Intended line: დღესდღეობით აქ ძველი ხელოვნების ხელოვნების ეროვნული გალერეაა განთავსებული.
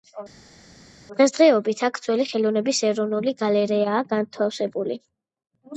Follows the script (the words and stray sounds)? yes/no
no